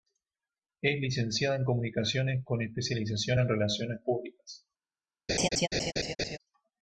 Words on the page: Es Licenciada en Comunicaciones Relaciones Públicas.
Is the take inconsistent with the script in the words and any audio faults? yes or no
yes